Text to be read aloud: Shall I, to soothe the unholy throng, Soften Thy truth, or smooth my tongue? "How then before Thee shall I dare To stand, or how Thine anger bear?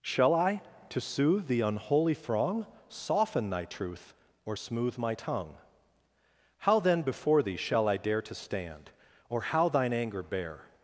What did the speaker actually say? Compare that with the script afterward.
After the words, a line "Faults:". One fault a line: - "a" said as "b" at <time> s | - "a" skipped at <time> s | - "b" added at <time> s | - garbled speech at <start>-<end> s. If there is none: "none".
Shall I, to soothe the unholy throng, Soften Thy truth, or smooth my tongue? "How then before Thee shall I dare To stand, or how Thine anger bear?
Faults:
none